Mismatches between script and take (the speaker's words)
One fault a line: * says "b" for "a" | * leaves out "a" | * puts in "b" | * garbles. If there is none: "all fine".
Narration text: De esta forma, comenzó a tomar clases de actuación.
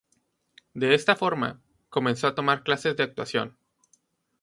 all fine